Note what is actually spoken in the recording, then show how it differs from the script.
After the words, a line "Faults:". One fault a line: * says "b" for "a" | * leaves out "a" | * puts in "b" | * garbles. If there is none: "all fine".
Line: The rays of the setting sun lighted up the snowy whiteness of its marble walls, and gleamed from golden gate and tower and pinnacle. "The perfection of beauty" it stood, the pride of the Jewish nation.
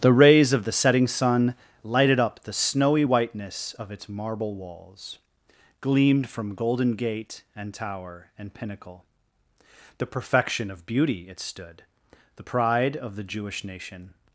The rays of the setting sun lighted up the snowy whiteness of its marble walls, gleamed from golden gate and tower and pinnacle. "The perfection of beauty" it stood, the pride of the Jewish nation.
Faults:
* leaves out "and"